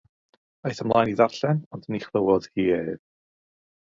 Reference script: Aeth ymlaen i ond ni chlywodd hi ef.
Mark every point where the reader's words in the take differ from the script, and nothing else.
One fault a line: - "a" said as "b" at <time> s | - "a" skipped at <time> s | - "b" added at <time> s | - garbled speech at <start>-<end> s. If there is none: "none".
- "ddarllen" added at 1.2 s